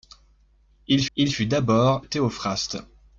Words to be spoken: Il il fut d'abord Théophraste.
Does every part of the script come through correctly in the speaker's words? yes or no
yes